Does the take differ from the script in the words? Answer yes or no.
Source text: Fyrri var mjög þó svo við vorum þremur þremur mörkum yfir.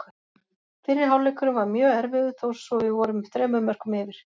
yes